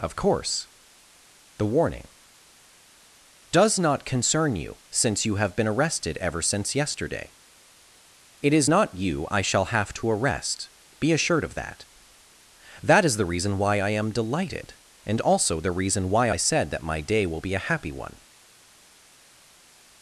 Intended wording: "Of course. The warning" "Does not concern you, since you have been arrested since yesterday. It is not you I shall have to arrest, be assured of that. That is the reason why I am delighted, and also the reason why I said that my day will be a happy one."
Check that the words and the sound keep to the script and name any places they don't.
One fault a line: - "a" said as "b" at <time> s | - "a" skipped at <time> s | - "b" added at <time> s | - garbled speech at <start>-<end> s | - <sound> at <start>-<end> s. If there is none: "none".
- "ever" added at 6.2 s